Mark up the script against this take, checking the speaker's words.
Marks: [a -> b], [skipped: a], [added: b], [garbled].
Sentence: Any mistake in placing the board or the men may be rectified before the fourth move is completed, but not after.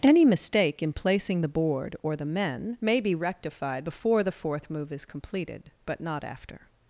Any mistake in placing the board or the men may be rectified before the fourth move is completed, but not after.